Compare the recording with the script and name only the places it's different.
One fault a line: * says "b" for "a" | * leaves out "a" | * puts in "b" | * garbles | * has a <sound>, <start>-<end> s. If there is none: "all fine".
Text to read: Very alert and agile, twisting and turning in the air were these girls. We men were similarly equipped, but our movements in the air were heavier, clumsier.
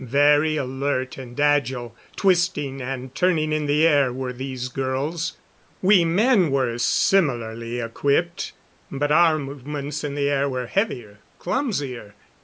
all fine